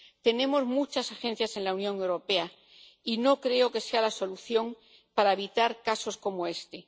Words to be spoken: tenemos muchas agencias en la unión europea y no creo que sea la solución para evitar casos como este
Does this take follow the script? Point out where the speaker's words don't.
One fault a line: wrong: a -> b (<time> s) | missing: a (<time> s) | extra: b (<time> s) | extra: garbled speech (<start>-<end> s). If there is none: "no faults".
no faults